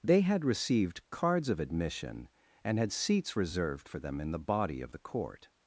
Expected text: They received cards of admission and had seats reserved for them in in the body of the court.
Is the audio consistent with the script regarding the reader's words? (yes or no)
no